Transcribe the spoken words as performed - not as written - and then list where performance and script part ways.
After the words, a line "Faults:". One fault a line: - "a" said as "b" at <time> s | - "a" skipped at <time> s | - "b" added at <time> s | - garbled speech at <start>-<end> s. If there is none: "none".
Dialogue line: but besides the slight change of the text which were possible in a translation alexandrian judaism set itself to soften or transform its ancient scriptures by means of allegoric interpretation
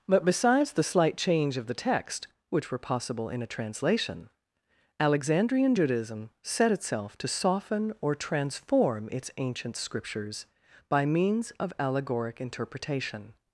but besides the slight change of the text which were possible in a translation alexandrian judaism set itself to soften or transform its ancient scriptures by means of allegoric interpretation
Faults:
none